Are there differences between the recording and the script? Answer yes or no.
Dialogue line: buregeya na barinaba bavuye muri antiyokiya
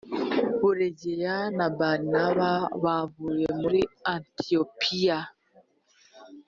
no